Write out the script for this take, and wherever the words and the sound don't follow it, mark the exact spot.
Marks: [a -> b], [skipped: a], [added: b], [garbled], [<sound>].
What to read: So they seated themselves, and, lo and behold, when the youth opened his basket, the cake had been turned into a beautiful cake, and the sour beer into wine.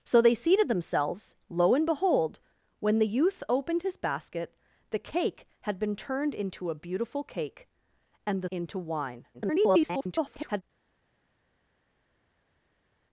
So they seated themselves, [skipped: and,] lo and behold, when the youth opened his basket, the cake had been turned into a beautiful cake, and the [skipped: sour beer] into wine. [garbled]